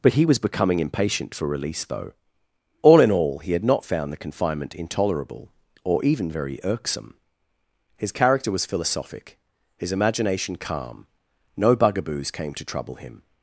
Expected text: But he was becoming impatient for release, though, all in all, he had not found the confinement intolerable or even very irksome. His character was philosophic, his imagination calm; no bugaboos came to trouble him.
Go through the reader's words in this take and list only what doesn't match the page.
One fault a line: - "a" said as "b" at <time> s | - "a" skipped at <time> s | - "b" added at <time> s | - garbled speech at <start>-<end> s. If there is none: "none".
none